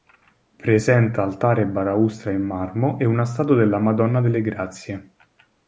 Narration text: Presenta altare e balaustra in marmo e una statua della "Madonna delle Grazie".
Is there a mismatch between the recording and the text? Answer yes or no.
no